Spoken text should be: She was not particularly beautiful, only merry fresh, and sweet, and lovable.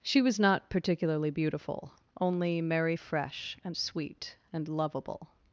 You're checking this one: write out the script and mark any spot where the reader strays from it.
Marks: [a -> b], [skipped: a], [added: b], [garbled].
She was not particularly beautiful, only merry fresh, and sweet, and lovable.